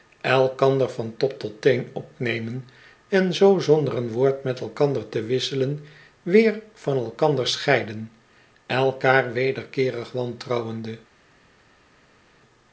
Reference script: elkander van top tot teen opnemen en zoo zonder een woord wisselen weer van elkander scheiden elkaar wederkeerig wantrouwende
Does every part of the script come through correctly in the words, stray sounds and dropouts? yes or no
no